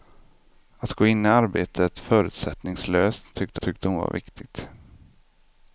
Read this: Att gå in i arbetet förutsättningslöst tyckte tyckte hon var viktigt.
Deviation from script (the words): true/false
false